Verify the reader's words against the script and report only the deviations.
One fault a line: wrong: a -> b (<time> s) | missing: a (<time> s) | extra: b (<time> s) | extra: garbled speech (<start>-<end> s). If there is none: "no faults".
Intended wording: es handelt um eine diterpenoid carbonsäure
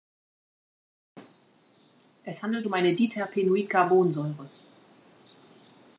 no faults